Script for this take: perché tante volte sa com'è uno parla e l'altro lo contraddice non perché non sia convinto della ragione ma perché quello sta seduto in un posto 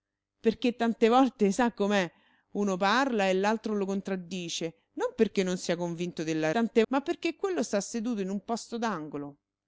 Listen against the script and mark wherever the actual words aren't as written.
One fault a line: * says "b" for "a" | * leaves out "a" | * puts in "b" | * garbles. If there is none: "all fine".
* says "tante" for "ragione"